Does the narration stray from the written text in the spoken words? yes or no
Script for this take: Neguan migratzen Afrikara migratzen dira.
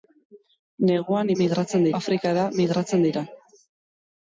no